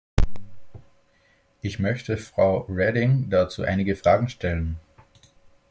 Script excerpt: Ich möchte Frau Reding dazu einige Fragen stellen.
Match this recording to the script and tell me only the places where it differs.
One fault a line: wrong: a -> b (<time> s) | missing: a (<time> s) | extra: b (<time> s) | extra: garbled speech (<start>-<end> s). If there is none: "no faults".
no faults